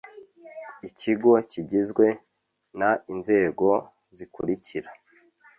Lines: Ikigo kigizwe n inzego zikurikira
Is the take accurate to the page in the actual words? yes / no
yes